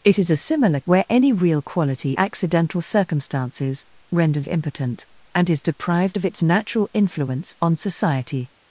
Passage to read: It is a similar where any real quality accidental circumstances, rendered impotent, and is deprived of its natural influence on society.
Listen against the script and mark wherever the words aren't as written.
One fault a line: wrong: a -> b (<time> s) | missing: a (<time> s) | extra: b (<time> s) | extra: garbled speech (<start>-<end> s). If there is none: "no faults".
no faults